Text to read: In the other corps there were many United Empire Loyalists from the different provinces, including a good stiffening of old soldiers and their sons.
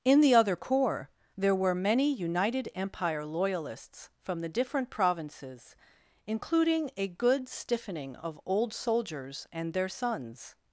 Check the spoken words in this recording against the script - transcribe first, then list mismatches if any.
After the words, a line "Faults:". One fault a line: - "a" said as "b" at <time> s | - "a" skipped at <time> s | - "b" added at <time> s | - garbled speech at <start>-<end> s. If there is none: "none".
In the other corps there were many United Empire Loyalists from the different provinces, including a good stiffening of old soldiers and their sons.
Faults:
none